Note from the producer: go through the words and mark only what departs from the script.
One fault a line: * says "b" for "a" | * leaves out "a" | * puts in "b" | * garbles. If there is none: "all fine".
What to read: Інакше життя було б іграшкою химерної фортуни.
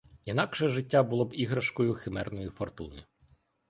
all fine